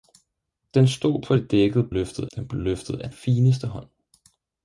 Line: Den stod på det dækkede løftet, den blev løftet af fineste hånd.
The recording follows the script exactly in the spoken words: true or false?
true